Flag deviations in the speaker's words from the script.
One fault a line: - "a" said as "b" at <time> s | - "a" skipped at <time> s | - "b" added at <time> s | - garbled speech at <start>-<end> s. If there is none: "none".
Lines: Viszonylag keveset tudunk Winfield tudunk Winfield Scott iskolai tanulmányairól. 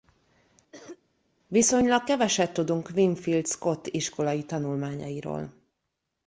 - "tudunk Winfield" skipped at 3.5 s